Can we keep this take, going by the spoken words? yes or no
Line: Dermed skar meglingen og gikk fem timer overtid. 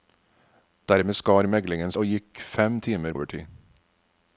yes